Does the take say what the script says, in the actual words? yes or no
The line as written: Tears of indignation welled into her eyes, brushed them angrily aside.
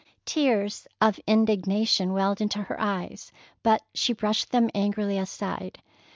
no